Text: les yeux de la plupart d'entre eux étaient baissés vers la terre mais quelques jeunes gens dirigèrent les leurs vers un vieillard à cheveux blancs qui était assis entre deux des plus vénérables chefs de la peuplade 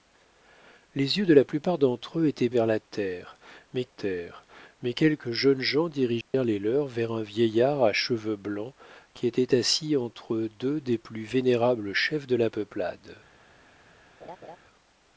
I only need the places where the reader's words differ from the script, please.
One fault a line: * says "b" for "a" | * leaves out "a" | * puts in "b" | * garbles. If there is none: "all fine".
* leaves out "baissés"
* puts in "terre mais"